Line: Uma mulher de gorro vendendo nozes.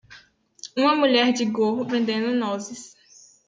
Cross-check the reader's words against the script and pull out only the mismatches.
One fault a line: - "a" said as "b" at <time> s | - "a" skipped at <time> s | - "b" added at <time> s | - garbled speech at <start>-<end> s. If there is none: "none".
none